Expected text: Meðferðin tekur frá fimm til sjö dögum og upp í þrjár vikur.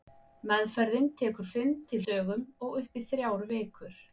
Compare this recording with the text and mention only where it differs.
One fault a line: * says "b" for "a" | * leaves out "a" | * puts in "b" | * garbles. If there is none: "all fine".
* leaves out "frá"
* leaves out "sjö"